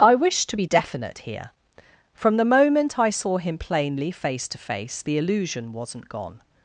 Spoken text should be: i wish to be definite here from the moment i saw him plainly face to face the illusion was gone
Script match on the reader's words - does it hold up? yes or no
no